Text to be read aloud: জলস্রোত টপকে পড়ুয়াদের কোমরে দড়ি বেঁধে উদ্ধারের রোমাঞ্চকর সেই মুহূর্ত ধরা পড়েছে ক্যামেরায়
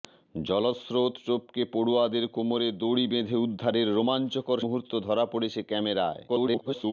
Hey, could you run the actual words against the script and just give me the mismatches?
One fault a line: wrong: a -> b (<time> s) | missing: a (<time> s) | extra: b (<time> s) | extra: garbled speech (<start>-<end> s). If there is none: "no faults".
missing: সেই (4.6 s)
extra: garbled speech (6.3-6.9 s)